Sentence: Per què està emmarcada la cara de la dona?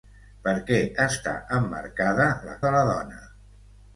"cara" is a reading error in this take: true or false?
true